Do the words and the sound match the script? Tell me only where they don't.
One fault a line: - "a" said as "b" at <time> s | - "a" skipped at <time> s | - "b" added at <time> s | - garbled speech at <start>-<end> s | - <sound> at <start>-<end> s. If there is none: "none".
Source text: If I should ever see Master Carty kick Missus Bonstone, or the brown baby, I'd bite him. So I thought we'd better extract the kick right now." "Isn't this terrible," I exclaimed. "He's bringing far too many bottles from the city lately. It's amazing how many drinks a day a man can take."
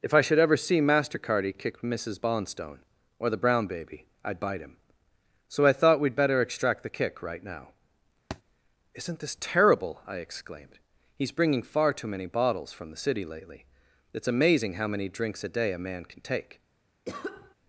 - thud at 8.3-8.4 s
- cough at 17.0-17.5 s